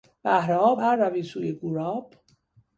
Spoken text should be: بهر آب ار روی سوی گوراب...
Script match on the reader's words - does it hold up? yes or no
yes